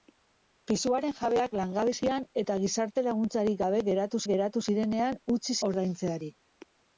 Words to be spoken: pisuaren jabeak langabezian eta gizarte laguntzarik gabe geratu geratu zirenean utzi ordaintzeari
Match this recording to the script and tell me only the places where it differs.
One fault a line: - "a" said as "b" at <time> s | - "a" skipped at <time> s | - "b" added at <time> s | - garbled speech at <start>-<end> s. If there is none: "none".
none